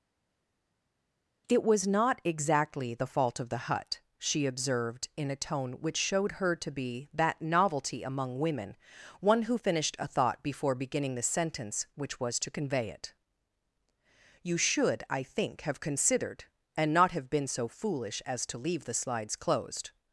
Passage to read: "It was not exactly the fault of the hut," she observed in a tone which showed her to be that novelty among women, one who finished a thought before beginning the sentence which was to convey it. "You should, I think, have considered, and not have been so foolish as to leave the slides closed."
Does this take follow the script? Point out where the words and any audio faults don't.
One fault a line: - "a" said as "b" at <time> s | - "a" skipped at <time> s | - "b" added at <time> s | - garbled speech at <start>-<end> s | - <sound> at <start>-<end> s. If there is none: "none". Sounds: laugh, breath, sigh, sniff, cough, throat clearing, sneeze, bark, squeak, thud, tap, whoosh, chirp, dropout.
none